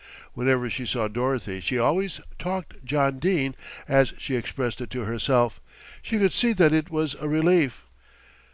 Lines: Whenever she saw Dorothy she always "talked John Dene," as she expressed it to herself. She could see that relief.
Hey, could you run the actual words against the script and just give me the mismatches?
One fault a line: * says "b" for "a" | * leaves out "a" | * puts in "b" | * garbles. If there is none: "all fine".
* puts in "it was a"